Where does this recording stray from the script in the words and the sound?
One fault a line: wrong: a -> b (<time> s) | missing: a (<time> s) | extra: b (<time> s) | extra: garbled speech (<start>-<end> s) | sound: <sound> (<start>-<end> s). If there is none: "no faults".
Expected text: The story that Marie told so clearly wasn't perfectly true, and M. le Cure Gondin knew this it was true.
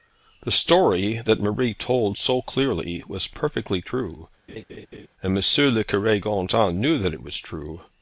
wrong: wasn't -> was (3.1 s)
sound: laugh (4.5-5.1 s)
wrong: this -> that (7.0 s)